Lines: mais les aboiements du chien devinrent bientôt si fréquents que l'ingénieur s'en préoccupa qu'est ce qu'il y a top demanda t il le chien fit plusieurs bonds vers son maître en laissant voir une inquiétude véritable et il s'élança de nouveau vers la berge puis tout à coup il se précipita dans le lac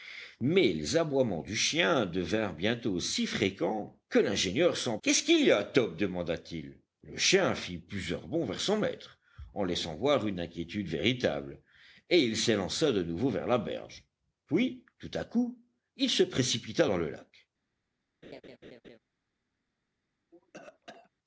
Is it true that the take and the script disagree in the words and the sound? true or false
true